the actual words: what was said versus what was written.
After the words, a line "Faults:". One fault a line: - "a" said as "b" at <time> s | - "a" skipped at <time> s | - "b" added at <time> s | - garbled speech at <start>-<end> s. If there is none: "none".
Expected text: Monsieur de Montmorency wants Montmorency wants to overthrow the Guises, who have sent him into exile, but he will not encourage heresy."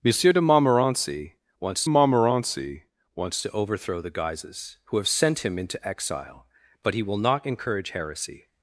Monsieur de Montmorency wants Montmorency wants to overthrow the Guises, who have sent him into exile, but he will not encourage heresy."
Faults:
none